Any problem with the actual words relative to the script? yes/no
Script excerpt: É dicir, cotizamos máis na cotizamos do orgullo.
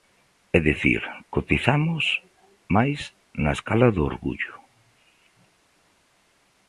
yes